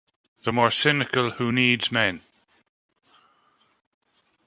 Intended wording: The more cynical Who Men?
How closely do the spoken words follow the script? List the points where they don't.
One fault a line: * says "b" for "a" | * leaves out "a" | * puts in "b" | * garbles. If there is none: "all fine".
* puts in "Needs"